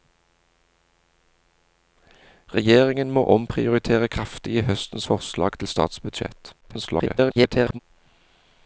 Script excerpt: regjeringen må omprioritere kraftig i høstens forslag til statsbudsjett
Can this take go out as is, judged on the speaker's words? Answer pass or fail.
fail